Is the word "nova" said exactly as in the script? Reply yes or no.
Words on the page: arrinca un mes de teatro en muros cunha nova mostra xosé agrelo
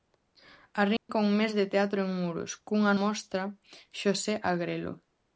no